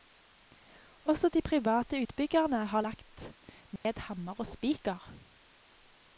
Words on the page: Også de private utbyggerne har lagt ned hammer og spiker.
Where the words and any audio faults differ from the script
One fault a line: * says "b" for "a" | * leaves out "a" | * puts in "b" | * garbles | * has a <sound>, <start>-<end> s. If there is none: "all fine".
* has a dropout, 3.8-3.8 s